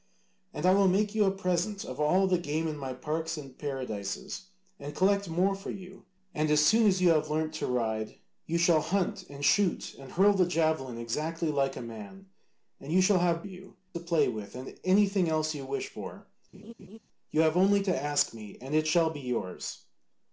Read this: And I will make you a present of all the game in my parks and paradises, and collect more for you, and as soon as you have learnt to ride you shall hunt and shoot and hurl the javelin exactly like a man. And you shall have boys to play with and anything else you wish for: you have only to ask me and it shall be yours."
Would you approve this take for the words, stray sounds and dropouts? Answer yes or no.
no